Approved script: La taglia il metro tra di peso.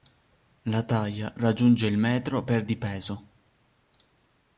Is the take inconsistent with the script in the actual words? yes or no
yes